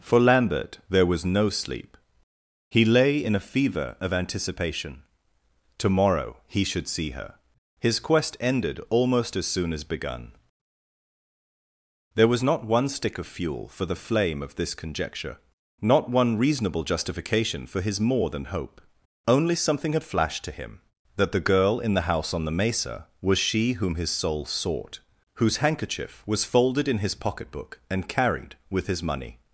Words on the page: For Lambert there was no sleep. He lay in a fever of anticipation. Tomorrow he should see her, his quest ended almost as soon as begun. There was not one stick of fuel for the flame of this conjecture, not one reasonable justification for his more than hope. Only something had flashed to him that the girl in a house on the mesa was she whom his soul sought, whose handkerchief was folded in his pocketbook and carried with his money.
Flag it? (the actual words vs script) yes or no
yes